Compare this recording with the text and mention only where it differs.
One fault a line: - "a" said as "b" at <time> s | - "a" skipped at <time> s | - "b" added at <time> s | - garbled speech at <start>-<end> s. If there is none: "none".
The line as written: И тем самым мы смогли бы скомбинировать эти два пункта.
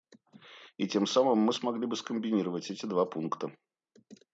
none